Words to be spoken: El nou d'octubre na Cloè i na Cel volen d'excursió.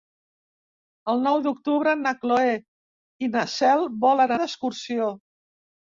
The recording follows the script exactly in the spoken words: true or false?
true